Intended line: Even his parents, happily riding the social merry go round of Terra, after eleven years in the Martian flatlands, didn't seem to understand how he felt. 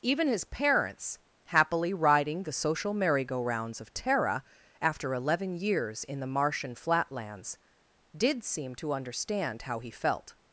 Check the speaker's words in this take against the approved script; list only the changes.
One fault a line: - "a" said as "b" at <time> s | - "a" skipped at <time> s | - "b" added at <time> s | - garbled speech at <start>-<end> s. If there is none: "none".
- "round" said as "rounds" at 3.4 s
- "didn't" said as "did" at 8.2 s